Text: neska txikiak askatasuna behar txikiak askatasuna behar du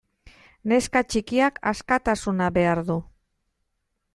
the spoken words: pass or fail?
fail